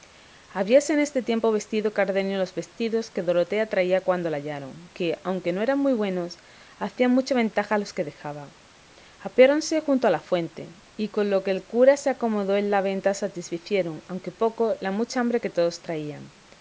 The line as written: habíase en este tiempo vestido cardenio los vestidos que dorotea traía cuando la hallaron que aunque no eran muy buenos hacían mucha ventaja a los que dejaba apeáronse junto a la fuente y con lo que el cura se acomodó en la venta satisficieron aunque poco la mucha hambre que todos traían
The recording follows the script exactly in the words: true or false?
true